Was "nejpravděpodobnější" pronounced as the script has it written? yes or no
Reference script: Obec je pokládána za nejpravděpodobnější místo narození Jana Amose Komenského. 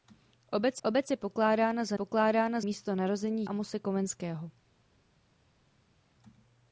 no